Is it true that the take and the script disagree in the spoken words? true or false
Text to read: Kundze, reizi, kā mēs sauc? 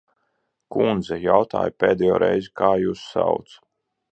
true